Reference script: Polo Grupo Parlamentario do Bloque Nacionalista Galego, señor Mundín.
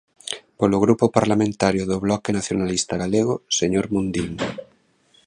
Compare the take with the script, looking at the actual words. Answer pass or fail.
pass